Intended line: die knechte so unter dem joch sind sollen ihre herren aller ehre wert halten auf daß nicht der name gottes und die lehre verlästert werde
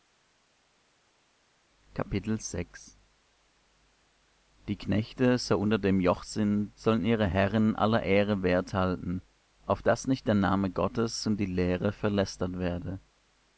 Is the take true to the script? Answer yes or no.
yes